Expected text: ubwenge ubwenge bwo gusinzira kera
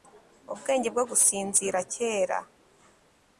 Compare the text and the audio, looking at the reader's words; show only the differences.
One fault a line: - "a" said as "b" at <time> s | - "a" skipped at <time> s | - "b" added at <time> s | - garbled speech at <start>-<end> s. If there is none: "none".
- "ubwenge" skipped at 0.9 s